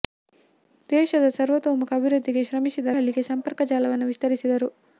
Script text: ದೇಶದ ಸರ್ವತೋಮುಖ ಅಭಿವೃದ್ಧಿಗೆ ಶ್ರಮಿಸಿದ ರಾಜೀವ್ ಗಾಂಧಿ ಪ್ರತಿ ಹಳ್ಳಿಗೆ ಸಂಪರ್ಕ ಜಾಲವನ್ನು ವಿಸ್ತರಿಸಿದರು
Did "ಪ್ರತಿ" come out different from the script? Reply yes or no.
yes